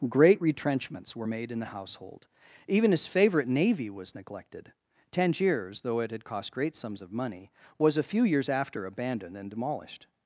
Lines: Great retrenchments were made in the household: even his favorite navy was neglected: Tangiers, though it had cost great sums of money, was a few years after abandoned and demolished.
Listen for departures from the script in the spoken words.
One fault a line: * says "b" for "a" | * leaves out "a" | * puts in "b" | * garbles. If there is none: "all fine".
all fine